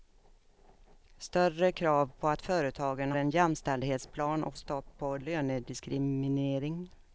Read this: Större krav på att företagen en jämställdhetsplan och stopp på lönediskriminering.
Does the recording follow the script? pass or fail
pass